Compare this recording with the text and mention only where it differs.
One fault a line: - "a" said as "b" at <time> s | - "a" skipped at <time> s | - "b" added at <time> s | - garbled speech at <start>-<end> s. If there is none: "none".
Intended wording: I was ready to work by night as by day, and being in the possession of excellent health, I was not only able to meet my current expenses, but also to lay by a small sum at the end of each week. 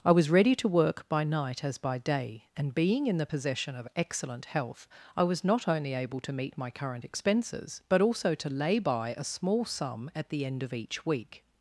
none